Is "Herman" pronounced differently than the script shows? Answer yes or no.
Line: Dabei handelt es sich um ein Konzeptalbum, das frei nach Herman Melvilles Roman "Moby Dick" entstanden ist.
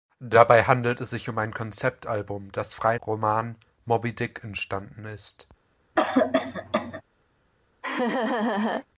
yes